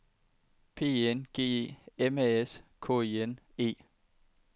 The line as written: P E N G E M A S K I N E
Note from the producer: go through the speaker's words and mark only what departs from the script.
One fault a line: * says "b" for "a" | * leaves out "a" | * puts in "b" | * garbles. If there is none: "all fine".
all fine